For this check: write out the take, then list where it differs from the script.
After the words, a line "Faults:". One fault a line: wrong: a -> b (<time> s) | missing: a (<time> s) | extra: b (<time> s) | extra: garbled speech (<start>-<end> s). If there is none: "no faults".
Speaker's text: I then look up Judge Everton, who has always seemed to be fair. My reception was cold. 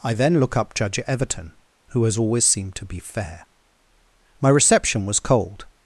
I then look up Judge Everton, who has always seemed to be fair. My reception was cold.
Faults:
no faults